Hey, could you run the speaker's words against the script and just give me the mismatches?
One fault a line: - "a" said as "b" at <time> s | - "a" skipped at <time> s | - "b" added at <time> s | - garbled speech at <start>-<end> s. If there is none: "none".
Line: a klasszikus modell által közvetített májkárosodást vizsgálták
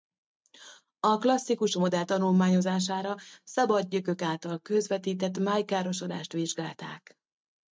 - "tanulmányozására szabad gyökök" added at 2.0 s